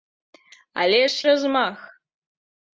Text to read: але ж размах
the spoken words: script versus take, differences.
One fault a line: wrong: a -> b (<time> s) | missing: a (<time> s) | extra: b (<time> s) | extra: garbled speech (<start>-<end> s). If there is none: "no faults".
no faults